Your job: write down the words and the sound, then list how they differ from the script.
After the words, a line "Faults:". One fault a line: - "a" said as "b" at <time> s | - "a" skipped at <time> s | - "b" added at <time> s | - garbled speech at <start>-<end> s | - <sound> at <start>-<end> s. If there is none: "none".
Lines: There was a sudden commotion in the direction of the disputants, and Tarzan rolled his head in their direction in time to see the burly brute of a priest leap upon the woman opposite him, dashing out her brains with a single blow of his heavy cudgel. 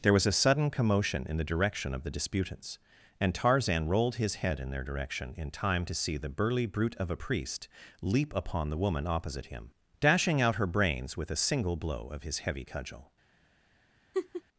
There was a sudden commotion in the direction of the disputants, and Tarzan rolled his head in their direction in time to see the burly brute of a priest leap upon the woman opposite him, dashing out her brains with a single blow of his heavy cudgel.
Faults:
- laugh at 14.1-14.4 s